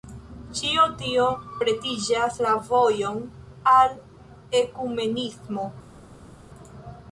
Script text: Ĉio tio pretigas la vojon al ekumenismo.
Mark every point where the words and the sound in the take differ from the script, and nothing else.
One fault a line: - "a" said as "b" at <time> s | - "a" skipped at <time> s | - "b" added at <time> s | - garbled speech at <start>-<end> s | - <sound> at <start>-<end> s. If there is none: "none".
none